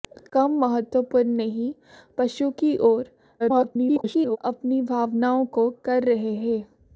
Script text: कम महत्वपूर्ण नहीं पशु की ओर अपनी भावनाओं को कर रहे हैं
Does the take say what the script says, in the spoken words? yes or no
no